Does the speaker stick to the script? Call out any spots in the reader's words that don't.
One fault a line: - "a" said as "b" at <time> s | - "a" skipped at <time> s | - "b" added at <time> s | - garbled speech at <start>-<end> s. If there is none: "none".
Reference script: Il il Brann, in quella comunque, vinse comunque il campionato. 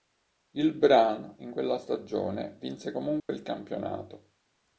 - "il" skipped at 0.7 s
- "comunque" said as "stagione" at 1.8 s